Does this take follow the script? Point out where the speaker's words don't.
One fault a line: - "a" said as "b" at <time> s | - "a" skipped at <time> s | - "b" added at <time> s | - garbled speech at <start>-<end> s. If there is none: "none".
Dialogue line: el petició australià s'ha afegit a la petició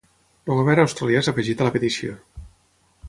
- "petició" said as "govern" at 0.6 s